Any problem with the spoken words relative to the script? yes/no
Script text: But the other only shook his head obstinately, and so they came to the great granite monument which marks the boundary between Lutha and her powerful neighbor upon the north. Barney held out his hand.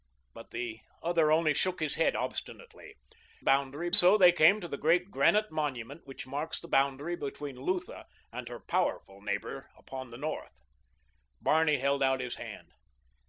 yes